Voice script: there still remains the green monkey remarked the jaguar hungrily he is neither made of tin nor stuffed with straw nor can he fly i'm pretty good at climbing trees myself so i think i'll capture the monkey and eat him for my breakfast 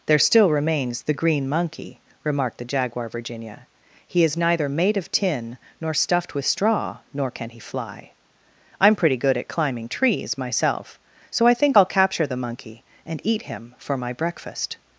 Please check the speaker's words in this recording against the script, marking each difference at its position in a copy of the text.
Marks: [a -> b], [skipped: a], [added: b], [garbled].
there still remains the green monkey remarked the jaguar [hungrily -> virginia] he is neither made of tin nor stuffed with straw nor can he fly i'm pretty good at climbing trees myself so i think i'll capture the monkey and eat him for my breakfast